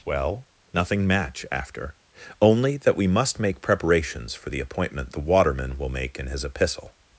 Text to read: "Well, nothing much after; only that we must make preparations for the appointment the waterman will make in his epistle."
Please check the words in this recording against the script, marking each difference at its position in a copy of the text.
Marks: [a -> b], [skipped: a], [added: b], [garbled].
"Well, nothing [much -> match] after; only that we must make preparations for the appointment the waterman will make in his epistle."